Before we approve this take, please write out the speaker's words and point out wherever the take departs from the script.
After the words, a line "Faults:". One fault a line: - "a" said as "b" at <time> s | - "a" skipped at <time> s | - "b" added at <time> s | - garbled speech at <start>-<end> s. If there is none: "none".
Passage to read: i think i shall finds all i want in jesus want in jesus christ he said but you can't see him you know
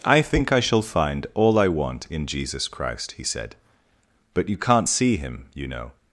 i think i shall find all i want in jesus christ he said but you can't see him you know
Faults:
- "finds" said as "find" at 0.8 s
- "want in jesus" skipped at 2.7 s